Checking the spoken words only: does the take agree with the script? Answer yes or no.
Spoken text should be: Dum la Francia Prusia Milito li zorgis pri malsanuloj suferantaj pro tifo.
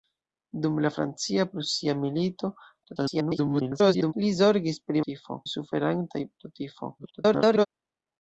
no